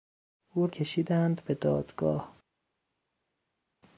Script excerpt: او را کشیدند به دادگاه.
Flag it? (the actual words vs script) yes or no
yes